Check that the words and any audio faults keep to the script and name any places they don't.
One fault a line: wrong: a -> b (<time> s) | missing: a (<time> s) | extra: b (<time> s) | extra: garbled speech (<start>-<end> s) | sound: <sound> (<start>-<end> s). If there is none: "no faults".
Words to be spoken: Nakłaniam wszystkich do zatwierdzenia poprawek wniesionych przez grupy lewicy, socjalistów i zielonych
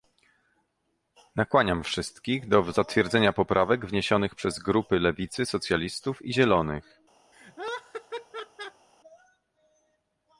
sound: laugh (7.3-8.9 s)